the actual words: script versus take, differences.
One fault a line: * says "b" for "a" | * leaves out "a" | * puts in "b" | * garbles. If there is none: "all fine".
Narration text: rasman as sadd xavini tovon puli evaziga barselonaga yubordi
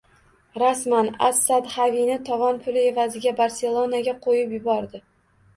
* puts in "qo‘yib"